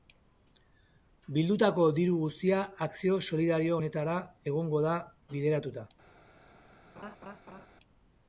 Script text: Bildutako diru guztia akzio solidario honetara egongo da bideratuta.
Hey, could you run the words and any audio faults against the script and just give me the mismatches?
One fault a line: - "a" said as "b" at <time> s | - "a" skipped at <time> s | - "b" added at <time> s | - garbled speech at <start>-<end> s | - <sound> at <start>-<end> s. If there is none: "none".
- laugh at 7.0-7.7 s